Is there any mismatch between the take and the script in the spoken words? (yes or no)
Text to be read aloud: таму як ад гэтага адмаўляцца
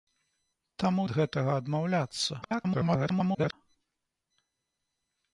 yes